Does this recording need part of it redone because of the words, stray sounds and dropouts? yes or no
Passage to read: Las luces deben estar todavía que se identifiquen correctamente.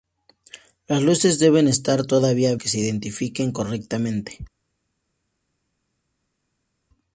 no